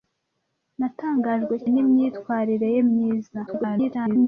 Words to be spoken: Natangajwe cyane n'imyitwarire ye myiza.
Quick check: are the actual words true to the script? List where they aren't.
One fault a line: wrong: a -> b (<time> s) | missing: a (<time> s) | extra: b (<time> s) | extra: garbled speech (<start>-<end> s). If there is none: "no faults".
missing: cyane (1.6 s)
extra: garbled speech (3.5-4.3 s)